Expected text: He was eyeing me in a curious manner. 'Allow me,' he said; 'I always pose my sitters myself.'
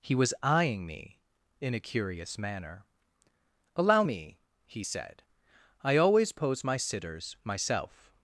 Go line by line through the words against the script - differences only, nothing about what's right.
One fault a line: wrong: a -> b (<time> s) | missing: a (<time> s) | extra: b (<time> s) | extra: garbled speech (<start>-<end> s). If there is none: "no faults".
no faults